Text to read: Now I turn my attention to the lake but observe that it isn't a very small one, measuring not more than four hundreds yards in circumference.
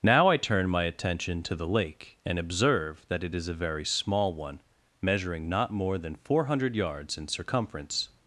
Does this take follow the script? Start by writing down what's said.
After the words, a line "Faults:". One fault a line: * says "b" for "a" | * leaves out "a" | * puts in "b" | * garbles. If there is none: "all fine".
Now I turn my attention to the lake and observe that it is a very small one, measuring not more than four hundred yards in circumference.
Faults:
* says "and" for "but"
* says "is" for "isn't"
* says "hundred" for "hundreds"